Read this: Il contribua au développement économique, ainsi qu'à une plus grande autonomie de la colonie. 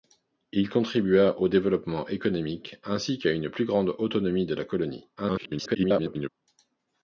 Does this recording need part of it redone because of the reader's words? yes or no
yes